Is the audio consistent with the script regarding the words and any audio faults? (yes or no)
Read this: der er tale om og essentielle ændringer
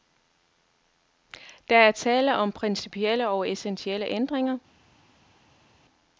no